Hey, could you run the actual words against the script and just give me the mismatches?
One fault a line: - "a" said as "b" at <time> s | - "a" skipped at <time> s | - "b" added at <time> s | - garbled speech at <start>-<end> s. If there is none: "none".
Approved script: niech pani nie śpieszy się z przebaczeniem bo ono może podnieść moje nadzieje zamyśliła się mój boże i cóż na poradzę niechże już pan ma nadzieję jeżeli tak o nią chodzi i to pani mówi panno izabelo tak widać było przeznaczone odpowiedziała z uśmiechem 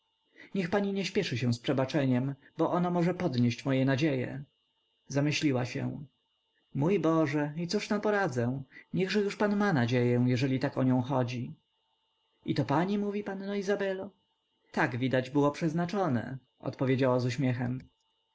none